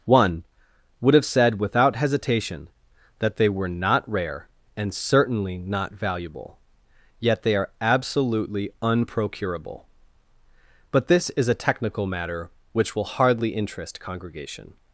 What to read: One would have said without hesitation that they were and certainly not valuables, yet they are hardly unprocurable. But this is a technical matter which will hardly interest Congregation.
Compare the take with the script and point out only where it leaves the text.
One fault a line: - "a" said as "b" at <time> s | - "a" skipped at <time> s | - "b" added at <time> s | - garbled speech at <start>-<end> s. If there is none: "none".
- "not rare" added at 3.7 s
- "valuables" said as "valuable" at 5.9 s
- "hardly" said as "absolutely" at 7.8 s